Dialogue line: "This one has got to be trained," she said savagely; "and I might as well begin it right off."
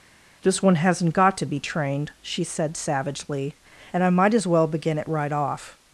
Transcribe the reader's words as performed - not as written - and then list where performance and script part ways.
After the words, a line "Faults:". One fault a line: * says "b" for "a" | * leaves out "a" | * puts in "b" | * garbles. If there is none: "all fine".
"This one hasn't got to be trained," she said savagely; "and I might as well begin it right off."
Faults:
* says "hasn't" for "has"